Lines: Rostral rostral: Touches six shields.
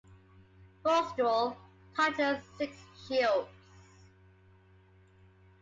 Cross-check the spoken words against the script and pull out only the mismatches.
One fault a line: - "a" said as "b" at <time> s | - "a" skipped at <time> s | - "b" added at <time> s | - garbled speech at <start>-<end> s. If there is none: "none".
- "rostral" skipped at 1.6 s